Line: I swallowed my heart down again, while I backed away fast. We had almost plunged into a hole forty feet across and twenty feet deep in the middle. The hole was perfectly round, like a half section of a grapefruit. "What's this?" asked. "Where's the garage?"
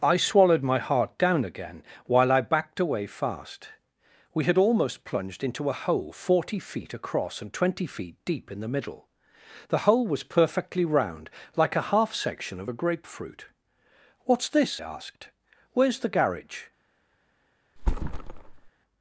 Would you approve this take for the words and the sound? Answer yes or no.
no